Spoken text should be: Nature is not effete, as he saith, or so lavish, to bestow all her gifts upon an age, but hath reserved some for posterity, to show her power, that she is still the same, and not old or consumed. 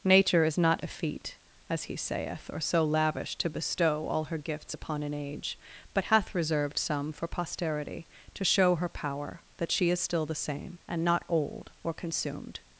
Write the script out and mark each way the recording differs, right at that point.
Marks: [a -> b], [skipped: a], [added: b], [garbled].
Nature is not effete, as he saith, or so lavish, to bestow all her gifts upon an age, but hath reserved some for posterity, to show her power, that she is still the same, and not old or consumed.